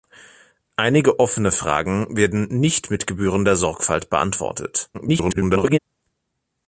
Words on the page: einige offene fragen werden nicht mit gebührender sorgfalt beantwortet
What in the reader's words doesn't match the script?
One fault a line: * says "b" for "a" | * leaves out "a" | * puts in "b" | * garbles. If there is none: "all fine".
* garbles